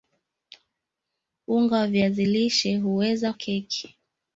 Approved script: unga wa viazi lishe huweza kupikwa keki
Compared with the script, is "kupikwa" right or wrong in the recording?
wrong